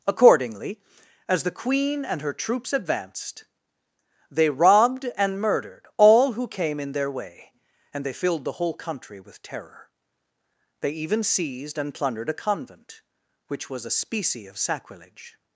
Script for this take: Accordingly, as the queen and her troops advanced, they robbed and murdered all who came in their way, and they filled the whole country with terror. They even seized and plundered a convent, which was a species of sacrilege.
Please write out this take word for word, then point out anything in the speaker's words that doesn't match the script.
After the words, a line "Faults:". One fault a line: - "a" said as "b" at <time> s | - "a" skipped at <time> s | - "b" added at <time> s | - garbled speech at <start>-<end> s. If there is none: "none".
Accordingly, as the queen and her troops advanced, they robbed and murdered all who came in their way, and they filled the whole country with terror. They even seized and plundered a convent, which was a specie of sacrilege.
Faults:
- "species" said as "specie" at 13.9 s